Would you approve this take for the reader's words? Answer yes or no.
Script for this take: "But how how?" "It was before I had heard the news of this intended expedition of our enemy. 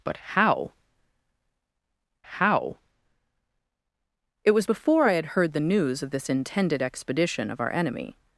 yes